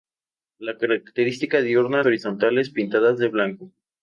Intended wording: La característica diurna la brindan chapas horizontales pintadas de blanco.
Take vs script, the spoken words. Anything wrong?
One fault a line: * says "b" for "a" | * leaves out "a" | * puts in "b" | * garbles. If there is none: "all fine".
* leaves out "la brindan chapas"